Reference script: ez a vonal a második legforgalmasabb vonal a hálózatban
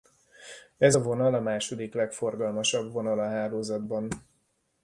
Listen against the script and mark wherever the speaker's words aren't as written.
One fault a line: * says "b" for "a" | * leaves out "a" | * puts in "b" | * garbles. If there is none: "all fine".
all fine